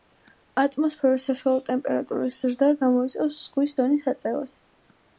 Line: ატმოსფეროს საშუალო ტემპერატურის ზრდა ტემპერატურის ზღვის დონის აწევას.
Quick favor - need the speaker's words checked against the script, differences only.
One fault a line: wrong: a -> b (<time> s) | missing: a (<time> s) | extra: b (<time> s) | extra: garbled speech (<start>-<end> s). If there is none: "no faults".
wrong: ტემპერატურის -> გამოიწვევს (2.8 s)